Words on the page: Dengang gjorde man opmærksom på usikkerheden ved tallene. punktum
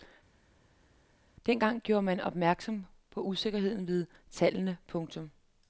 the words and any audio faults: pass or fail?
pass